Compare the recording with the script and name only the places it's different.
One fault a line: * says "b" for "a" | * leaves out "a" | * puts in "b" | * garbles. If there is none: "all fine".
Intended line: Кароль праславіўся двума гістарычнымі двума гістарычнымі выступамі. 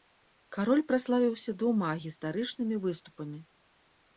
* leaves out "двума гістарычнымі"